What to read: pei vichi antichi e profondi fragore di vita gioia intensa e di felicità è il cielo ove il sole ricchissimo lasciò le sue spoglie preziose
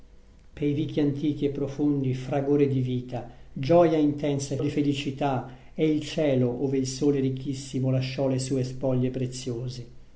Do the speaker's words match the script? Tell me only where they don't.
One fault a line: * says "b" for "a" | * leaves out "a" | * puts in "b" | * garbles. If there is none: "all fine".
all fine